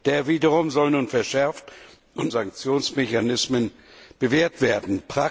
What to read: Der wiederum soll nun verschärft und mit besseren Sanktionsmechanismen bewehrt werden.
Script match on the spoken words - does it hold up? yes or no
no